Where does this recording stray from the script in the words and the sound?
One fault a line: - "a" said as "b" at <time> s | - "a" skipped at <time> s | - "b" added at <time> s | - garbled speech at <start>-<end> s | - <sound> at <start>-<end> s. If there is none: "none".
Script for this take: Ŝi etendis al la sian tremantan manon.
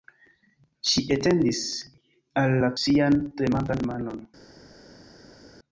none